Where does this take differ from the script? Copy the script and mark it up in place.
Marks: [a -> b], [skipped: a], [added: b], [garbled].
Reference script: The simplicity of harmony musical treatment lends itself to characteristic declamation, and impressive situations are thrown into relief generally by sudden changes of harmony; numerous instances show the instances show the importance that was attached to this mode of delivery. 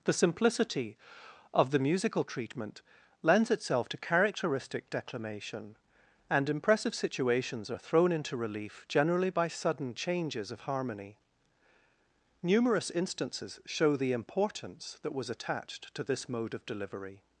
The simplicity of [harmony -> the] musical treatment lends itself to characteristic declamation, and impressive situations are thrown into relief generally by sudden changes of harmony; numerous instances show the [skipped: instances show the] importance that was attached to this mode of delivery.